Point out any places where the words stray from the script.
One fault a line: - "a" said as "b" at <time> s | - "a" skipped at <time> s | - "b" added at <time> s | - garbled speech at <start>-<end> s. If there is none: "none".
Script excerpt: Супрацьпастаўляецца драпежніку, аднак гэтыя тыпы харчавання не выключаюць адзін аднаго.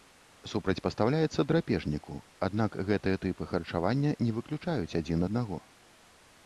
none